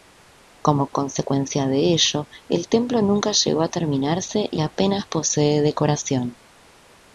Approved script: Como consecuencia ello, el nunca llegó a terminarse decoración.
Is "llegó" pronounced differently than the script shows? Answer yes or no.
no